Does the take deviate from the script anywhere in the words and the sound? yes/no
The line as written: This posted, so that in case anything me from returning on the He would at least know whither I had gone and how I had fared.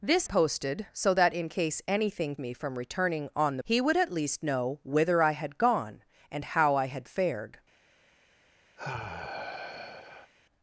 yes